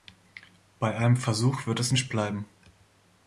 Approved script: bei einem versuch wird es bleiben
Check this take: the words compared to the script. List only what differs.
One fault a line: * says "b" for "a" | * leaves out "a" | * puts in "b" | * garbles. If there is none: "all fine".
* puts in "nicht"